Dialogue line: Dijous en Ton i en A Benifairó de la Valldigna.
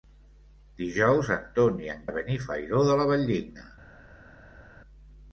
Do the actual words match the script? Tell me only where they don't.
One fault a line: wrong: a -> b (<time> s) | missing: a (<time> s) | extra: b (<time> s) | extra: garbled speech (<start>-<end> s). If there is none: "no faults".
no faults